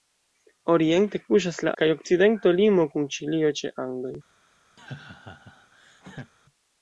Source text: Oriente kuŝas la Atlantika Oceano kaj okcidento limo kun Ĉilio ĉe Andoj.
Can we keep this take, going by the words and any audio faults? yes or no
no